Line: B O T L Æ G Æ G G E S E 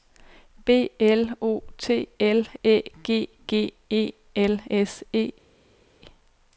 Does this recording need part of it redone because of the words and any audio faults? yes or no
yes